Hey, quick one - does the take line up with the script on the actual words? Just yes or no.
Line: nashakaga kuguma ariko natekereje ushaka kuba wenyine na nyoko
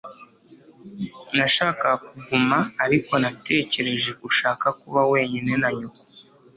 yes